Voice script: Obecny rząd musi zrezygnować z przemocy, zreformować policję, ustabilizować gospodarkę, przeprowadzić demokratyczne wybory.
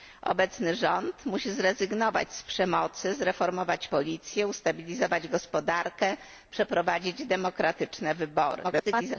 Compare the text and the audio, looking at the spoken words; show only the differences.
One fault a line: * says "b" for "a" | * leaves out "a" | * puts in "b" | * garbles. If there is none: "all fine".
* garbles